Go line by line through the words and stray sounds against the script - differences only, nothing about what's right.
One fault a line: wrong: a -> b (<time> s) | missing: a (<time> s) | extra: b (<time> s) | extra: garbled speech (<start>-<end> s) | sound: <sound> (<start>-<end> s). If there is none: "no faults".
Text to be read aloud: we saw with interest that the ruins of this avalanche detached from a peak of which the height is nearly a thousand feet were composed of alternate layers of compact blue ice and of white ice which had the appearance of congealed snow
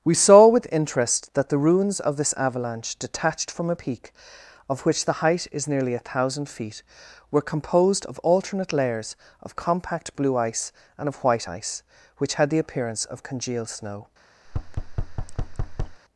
sound: thud (14.5-16.0 s)